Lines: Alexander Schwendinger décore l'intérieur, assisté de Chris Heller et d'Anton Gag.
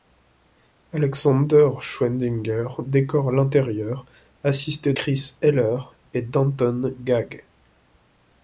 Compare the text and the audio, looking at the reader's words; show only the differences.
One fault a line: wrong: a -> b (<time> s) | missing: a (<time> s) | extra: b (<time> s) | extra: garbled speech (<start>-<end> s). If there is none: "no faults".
missing: de (5.0 s)